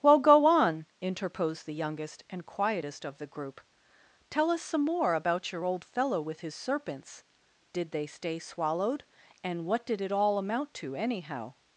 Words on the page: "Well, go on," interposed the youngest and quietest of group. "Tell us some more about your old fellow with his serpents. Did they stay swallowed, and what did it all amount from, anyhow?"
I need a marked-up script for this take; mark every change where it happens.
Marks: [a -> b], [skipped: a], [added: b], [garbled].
"Well, go on," interposed the youngest and quietest of [added: the] group. "Tell us some more about your old fellow with his serpents. Did they stay swallowed, and what did it all amount [from, -> to] anyhow?"